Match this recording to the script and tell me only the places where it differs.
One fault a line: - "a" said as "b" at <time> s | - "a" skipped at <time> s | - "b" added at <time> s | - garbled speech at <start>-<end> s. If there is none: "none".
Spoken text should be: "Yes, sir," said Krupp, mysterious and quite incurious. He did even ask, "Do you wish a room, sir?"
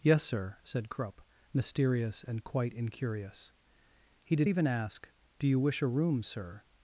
none